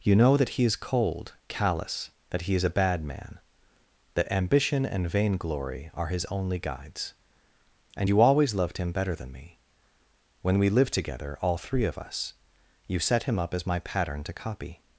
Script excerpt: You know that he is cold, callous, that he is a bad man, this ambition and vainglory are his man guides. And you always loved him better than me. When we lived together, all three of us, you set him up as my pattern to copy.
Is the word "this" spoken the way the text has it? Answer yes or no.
no